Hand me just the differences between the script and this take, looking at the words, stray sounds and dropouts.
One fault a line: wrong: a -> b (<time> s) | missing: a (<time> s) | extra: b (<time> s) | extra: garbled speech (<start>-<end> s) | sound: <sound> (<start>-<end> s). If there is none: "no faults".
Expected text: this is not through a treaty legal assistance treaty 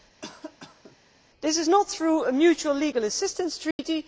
sound: cough (0.2-1.0 s)
wrong: treaty -> mutual (2.3 s)
sound: dropout (3.7-3.8 s)